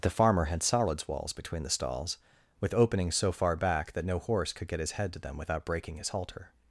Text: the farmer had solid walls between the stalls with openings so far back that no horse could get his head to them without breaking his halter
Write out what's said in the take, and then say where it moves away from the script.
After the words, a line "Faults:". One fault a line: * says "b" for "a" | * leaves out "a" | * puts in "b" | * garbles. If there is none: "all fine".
the farmer had solids walls between the stalls with openings so far back that no horse could get his head to them without breaking his halter
Faults:
* says "solids" for "solid"